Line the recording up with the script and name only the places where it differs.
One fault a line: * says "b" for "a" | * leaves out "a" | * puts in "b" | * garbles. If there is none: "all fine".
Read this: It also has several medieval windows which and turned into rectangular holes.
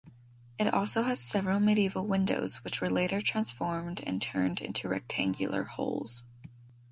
* puts in "were later transformed"